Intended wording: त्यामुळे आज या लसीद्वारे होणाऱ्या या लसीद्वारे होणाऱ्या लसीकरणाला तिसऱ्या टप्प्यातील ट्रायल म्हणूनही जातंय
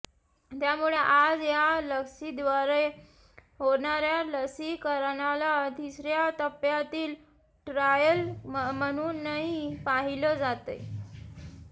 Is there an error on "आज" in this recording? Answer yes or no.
no